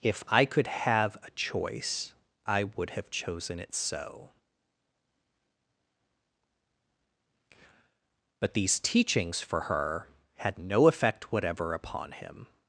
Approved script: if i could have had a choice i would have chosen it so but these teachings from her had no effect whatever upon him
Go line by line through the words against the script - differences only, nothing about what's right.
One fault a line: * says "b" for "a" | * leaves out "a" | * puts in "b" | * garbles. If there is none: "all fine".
* leaves out "had"
* says "for" for "from"